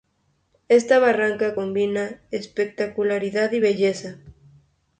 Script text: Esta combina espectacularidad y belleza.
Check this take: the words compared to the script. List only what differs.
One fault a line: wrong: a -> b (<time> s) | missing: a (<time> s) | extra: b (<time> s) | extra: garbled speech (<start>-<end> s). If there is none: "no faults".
extra: barranca (1.0 s)